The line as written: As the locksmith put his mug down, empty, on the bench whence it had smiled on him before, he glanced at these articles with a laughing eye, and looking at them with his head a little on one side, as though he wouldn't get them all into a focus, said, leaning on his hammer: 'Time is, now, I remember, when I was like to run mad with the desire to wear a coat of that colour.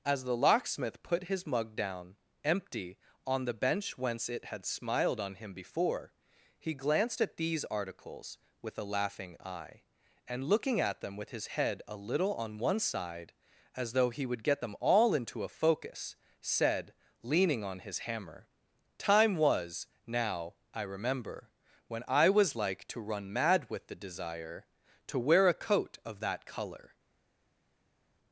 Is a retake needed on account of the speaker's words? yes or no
yes